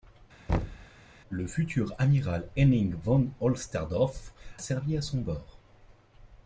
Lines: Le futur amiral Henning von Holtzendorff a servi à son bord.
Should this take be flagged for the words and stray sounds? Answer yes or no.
yes